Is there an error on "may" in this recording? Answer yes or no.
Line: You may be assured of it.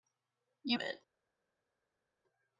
yes